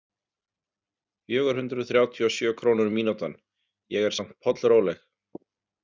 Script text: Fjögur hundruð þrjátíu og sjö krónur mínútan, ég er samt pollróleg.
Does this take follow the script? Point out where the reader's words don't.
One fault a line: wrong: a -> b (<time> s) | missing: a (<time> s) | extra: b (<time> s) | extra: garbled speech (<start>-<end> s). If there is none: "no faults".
no faults